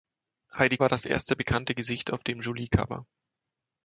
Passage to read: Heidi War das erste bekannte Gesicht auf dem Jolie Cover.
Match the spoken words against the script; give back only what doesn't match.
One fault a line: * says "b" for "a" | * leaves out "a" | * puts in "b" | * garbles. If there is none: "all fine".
all fine